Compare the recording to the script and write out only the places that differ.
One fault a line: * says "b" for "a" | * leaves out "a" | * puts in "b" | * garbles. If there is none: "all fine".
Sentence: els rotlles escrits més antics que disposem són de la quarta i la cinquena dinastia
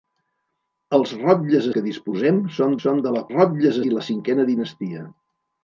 * leaves out "escrits més antics"
* puts in "són"
* says "rotlles" for "quarta"